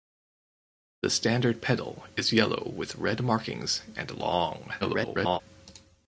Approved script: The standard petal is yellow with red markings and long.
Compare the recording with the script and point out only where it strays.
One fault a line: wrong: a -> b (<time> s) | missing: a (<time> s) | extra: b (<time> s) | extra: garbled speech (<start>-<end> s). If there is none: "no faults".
extra: garbled speech (4.8-5.4 s)